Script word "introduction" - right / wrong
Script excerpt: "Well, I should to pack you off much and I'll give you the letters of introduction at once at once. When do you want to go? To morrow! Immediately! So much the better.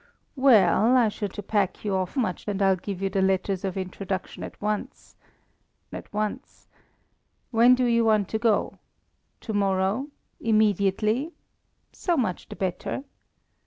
right